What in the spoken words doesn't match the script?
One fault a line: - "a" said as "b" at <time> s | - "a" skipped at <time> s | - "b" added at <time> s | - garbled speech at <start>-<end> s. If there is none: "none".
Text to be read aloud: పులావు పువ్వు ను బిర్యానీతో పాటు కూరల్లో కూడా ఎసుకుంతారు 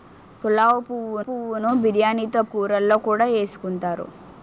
- "పువ్వు" added at 1.2 s
- "పాటు" skipped at 2.4 s